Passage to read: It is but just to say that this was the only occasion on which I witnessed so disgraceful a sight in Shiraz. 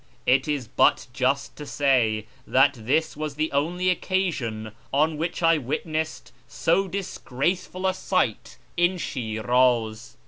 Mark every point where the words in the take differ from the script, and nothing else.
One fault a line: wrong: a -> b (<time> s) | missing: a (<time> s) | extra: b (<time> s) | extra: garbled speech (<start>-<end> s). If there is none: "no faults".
no faults